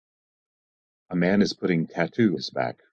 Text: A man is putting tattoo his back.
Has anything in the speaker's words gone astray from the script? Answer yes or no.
no